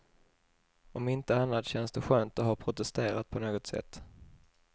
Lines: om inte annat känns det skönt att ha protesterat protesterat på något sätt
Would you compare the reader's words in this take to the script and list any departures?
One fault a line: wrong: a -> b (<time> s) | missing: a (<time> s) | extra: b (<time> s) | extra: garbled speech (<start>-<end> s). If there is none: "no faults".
missing: protesterat (3.3 s)